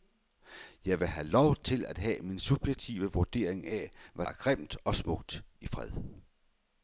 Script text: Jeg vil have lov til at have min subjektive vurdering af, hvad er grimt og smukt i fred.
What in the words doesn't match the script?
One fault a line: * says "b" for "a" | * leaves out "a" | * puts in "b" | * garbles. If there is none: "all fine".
all fine